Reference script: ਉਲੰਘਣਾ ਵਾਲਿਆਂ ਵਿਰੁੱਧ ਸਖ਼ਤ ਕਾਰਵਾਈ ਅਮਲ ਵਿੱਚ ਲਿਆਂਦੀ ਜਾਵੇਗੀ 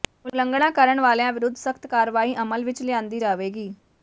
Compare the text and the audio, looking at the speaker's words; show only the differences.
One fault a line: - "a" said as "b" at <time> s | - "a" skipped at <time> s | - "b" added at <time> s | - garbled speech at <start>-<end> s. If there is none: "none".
- "ਕਰਨ" added at 0.7 s